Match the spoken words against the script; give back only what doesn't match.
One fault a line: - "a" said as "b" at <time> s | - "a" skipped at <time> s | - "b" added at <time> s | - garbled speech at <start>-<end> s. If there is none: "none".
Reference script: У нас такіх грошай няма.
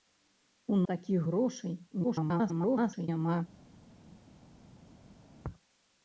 - "нас" skipped at 0.8 s
- garbled speech at 2.0-3.1 s